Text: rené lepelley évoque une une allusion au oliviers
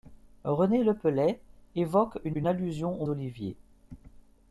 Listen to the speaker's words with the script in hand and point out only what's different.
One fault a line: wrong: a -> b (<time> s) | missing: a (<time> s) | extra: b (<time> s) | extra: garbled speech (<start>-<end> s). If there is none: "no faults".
no faults